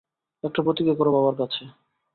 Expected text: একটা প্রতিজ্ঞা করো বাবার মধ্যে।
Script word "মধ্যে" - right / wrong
wrong